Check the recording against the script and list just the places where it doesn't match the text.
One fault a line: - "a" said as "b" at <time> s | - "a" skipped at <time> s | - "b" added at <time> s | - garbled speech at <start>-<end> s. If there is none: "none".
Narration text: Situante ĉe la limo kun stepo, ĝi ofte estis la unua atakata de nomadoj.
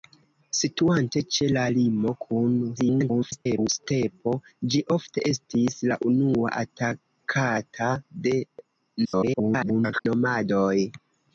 - garbled speech at 2.8-3.7 s
- garbled speech at 9.0-10.1 s